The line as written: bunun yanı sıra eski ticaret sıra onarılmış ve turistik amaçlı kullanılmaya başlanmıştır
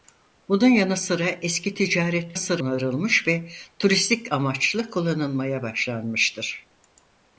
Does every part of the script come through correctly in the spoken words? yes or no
yes